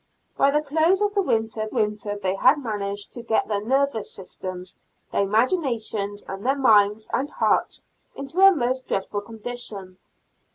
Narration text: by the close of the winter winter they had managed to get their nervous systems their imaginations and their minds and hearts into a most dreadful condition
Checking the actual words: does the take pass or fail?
pass